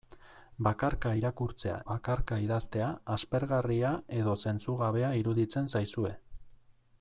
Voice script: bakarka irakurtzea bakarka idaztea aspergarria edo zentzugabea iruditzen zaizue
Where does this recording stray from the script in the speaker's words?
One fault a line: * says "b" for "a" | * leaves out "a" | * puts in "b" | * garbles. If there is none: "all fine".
all fine